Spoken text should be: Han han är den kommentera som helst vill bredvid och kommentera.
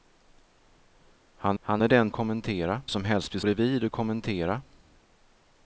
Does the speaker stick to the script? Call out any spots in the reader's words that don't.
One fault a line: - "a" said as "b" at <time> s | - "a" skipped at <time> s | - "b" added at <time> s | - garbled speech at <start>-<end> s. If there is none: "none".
none